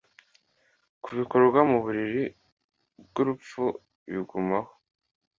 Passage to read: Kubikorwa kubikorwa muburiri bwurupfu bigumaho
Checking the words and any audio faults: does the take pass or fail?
fail